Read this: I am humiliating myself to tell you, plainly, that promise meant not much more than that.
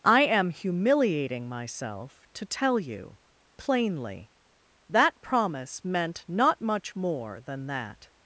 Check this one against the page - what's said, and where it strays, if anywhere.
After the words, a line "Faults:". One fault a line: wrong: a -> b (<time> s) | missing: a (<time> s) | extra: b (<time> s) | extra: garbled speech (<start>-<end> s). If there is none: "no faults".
I am humiliating myself to tell you, plainly, that promise meant not much more than that.
Faults:
no faults